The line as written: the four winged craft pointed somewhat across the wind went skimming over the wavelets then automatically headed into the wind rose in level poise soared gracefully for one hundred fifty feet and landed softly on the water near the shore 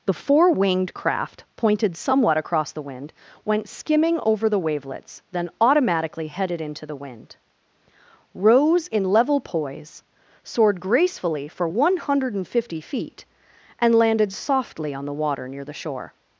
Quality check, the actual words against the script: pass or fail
pass